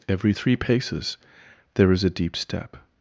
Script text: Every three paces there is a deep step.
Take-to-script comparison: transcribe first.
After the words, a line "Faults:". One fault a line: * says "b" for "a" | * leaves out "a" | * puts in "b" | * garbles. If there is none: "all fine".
Every three paces there is a deep step.
Faults:
all fine